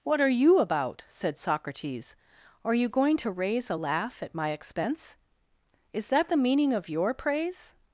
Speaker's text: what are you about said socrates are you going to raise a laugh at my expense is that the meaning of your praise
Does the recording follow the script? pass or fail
pass